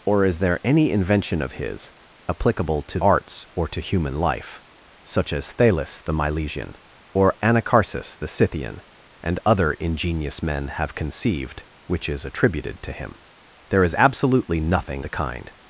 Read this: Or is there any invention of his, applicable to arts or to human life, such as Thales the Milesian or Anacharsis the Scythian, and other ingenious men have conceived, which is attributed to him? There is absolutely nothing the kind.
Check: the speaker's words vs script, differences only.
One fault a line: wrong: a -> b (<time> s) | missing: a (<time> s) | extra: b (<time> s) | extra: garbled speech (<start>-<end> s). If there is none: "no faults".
no faults